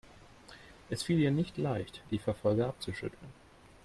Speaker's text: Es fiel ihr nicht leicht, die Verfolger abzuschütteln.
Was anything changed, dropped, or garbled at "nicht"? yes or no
no